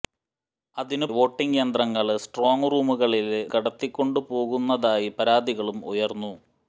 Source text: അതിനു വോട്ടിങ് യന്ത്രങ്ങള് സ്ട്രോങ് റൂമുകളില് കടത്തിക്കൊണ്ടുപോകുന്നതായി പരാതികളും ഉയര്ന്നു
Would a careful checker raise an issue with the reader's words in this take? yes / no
no